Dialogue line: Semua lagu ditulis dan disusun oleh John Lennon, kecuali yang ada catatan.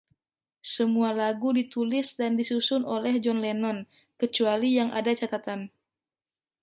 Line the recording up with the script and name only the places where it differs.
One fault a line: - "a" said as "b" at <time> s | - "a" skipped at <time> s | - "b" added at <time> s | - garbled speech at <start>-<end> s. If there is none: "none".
none